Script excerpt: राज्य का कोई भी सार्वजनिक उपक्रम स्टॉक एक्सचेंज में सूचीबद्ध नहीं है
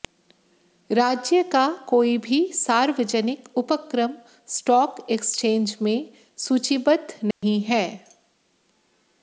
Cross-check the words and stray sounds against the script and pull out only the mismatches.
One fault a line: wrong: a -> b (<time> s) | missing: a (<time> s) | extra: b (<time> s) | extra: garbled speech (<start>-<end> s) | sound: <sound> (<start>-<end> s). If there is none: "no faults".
sound: dropout (7.3-7.4 s)